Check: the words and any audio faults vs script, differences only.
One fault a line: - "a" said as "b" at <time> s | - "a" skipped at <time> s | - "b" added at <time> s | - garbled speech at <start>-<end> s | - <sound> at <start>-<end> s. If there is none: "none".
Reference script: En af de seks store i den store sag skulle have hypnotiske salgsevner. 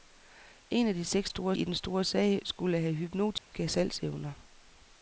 - dropout at 3.4-3.5 s